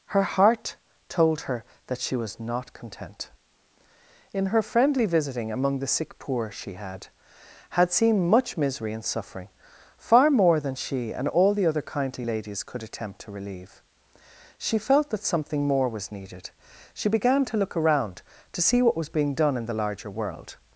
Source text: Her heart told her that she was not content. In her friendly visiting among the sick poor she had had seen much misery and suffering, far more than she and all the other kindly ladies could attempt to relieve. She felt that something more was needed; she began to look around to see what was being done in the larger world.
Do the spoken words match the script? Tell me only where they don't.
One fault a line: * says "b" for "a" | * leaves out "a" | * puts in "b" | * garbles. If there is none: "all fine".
all fine